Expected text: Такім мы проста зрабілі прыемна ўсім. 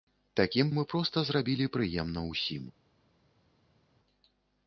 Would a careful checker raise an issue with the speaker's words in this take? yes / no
no